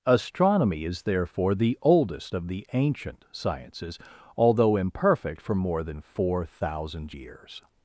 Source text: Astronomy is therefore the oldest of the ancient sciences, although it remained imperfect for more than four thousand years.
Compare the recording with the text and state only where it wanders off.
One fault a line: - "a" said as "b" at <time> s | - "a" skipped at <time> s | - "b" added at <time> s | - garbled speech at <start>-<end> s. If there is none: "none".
- "it remained" skipped at 4.8 s